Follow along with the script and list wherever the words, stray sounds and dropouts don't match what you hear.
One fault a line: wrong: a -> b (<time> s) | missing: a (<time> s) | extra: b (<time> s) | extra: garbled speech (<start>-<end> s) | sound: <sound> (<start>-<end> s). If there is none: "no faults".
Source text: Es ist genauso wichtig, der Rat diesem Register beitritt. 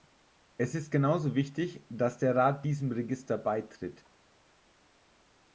extra: dass (1.9 s)